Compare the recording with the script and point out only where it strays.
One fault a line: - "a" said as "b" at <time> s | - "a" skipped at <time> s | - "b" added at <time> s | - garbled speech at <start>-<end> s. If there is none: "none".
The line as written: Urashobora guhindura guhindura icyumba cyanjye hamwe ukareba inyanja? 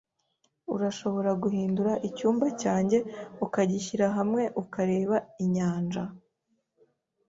- "guhindura" skipped at 1.9 s
- "ukagishyira" added at 3.5 s